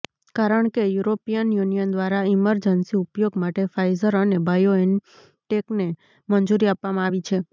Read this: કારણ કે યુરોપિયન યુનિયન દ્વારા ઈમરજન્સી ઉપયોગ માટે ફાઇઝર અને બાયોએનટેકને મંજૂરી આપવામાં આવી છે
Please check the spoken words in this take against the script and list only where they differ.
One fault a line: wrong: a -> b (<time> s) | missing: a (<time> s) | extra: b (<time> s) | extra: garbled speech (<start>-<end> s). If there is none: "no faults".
no faults